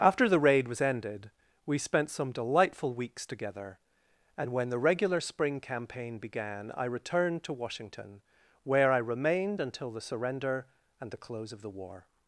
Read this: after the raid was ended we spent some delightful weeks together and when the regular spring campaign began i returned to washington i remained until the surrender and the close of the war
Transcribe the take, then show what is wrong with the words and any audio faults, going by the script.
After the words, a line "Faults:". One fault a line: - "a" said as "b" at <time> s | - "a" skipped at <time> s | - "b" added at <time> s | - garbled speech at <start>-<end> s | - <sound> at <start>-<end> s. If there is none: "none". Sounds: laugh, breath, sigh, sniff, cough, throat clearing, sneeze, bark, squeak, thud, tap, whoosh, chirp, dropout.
after the raid was ended we spent some delightful weeks together and when the regular spring campaign began i returned to washington where i remained until the surrender and the close of the war
Faults:
- "where" added at 8.6 s